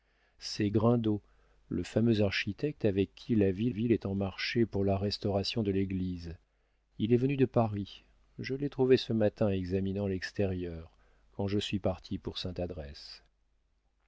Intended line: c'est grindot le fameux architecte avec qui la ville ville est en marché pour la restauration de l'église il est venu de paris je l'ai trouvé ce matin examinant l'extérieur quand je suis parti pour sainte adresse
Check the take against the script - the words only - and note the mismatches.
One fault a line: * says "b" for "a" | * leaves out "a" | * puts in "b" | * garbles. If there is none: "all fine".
all fine